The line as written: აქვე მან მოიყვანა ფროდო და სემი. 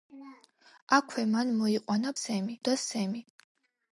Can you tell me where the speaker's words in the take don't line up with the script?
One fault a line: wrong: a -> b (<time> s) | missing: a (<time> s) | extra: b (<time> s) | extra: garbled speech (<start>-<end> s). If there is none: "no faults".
wrong: ფროდო -> სემი (2.2 s)